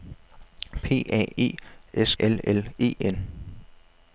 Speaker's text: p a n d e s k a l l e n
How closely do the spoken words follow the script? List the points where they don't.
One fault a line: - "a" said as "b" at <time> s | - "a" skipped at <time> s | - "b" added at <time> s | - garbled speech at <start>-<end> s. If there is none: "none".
- "n d" skipped at 1.4 s
- "k a" skipped at 2.1 s